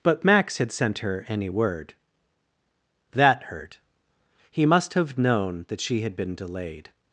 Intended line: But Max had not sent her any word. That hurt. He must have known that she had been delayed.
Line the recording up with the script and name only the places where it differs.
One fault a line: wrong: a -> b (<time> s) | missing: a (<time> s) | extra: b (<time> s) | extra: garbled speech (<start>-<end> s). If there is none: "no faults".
missing: not (0.7 s)